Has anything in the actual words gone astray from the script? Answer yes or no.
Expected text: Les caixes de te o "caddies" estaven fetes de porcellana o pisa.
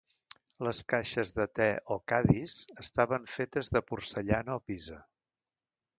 no